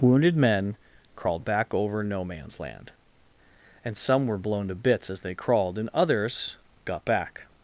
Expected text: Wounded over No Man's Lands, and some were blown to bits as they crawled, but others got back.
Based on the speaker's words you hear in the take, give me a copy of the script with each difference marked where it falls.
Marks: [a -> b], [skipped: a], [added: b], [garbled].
Wounded [added: men crawled back] over No Man's [Lands, -> Land] and some were blown to bits as they crawled, [but -> and] others got back.